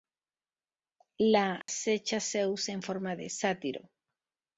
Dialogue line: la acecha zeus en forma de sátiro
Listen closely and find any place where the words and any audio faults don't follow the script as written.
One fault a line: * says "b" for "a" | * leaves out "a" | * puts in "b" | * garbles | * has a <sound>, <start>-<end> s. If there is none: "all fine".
* has a dropout, 1.6-1.7 s